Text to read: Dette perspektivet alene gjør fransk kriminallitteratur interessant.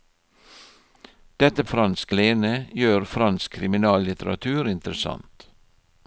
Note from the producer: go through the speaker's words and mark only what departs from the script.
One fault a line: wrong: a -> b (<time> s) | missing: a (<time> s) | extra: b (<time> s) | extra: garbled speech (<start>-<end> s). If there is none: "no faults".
wrong: perspektivet -> fransk (1.7 s)